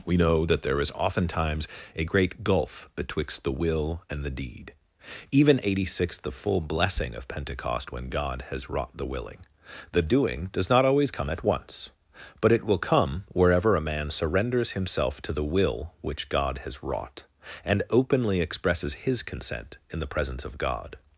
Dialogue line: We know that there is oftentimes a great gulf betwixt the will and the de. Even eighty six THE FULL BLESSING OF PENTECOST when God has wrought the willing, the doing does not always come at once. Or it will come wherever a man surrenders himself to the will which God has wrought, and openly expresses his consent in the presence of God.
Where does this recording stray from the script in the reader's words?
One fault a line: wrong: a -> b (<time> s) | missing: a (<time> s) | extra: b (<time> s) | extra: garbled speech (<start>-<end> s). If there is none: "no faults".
wrong: de -> deed (4.3 s)
wrong: Or -> But (12.4 s)